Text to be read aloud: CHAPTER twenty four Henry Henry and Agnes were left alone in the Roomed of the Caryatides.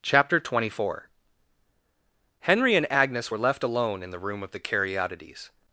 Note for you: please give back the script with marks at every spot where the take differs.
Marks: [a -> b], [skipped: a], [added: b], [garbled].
CHAPTER twenty four Henry [skipped: Henry] and Agnes were left alone in the [Roomed -> Room] of the Caryatides.